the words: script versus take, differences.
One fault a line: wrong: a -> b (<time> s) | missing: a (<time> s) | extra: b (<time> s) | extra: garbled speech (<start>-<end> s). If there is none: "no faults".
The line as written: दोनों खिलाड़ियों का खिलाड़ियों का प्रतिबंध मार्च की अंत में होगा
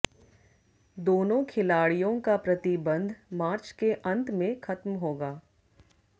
missing: खिलाड़ियों का (2.4 s)
wrong: की -> के (3.8 s)
extra: खत्म (4.6 s)